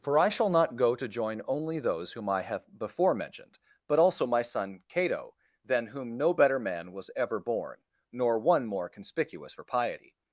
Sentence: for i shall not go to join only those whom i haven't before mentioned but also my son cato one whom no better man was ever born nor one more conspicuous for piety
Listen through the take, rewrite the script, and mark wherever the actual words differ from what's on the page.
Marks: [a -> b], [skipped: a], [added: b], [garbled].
for i shall not go to join only those whom i [haven't -> have] before mentioned but also my son cato [one -> than] whom no better man was ever born nor one more conspicuous for piety